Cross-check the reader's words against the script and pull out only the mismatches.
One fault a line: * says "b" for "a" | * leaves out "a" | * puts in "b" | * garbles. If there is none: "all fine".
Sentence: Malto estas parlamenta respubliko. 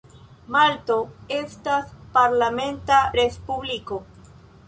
all fine